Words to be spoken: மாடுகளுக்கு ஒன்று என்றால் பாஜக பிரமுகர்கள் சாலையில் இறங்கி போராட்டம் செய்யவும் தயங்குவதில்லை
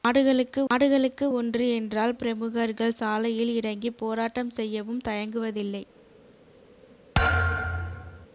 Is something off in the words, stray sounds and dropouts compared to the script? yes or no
yes